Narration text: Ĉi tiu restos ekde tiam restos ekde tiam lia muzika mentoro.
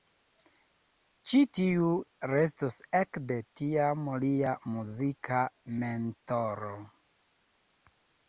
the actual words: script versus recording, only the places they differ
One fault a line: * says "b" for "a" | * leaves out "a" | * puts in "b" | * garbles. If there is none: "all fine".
* leaves out "restos ekde tiam"